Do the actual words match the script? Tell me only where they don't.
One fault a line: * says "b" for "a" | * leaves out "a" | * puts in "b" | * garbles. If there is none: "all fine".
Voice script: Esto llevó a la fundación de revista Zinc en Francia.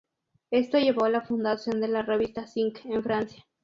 * puts in "la"